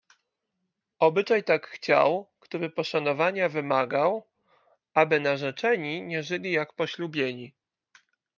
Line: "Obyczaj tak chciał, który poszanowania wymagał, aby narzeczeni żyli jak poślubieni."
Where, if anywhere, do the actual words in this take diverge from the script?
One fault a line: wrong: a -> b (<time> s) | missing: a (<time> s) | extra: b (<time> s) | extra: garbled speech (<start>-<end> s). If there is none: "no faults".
extra: nie (6.0 s)